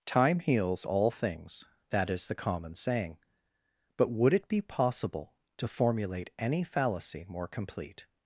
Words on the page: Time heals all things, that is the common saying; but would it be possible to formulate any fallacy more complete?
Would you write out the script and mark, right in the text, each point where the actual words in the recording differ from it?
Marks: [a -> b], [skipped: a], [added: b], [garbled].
Time heals all things, that is the common saying; but would it be possible to formulate any fallacy more complete?